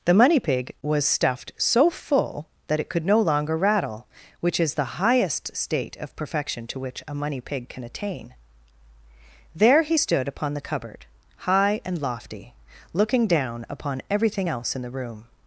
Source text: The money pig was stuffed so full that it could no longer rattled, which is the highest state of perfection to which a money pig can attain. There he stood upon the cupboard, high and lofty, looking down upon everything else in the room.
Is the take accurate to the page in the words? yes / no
no